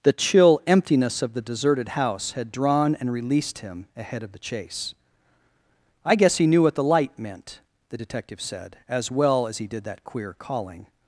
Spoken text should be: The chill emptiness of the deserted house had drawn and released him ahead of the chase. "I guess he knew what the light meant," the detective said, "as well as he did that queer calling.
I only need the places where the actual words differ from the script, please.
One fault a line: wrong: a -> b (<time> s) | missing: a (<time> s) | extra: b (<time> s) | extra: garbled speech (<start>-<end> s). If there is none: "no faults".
no faults